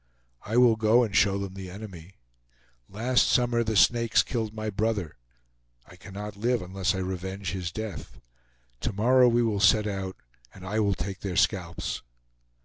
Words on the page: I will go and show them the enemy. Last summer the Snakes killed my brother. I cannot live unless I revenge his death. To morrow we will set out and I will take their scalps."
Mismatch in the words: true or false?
false